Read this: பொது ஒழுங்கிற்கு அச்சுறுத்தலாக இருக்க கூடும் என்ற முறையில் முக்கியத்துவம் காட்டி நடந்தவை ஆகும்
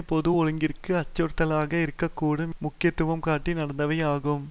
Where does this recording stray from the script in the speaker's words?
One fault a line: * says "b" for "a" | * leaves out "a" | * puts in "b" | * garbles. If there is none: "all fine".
* leaves out "என்ற முறையில்"